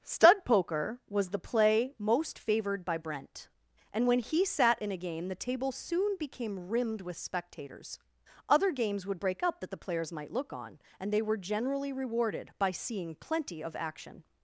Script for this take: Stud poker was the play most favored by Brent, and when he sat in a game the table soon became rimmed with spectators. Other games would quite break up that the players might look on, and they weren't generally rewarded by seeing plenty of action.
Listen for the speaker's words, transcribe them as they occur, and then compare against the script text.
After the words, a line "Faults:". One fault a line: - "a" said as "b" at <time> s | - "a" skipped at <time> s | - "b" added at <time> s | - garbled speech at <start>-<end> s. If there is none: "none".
Stud poker was the play most favored by Brent, and when he sat in a game the table soon became rimmed with spectators. Other games would break up that the players might look on, and they were generally rewarded by seeing plenty of action.
Faults:
- "quite" skipped at 9.2 s
- "weren't" said as "were" at 11.2 s